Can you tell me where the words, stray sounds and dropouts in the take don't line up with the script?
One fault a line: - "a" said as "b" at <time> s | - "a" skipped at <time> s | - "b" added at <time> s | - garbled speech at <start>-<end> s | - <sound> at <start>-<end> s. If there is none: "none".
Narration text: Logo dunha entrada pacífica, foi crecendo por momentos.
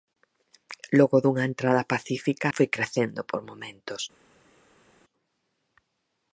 none